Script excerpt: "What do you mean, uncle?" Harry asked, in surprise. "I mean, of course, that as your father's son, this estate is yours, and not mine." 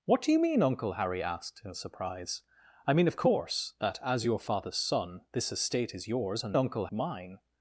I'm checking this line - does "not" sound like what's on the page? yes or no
no